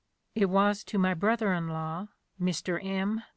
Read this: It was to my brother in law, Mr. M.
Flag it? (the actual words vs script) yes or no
no